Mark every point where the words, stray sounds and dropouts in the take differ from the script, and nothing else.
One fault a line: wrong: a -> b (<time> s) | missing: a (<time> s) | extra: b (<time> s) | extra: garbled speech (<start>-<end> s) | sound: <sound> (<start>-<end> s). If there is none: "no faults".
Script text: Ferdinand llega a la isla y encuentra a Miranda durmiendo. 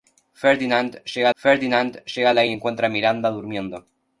extra: ferdinand llega (1.3 s)
missing: isla (2.5 s)